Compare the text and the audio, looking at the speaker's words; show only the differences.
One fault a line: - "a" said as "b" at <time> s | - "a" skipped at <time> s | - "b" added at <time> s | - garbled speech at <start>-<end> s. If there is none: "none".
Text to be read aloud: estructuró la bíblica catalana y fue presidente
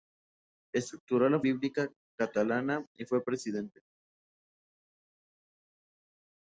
none